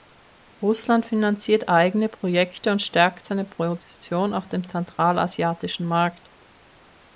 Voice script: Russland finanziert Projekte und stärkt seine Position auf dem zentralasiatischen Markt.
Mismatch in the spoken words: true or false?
true